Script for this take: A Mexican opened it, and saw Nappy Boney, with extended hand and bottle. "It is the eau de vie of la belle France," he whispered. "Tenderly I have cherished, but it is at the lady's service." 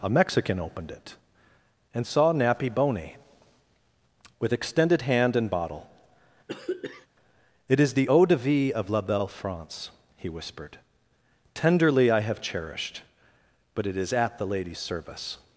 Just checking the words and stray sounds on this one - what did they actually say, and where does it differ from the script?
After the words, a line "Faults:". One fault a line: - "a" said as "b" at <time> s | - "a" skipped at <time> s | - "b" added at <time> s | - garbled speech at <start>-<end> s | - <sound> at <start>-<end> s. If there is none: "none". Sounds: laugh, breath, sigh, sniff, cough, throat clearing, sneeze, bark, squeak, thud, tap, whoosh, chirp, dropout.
A Mexican opened it, and saw Nappy Boney, with extended hand and bottle. "It is the eau de vie of la belle France," he whispered. "Tenderly I have cherished, but it is at the lady's service."
Faults:
- throat clearing at 6.5-7.1 s